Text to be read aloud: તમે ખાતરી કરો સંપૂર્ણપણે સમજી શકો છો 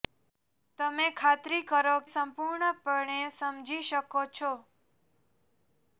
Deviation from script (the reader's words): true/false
false